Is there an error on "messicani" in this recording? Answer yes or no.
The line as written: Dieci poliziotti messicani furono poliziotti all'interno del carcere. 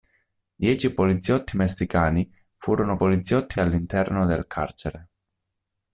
no